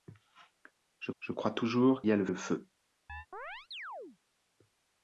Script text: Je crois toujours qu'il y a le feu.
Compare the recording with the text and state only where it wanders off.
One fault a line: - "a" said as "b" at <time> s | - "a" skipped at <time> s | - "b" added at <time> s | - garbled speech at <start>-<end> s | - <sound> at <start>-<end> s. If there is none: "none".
- "je" added at 1.2 s
- "qu'il" skipped at 2.0 s
- "le" added at 2.2 s
- chirp at 3.1-4.2 s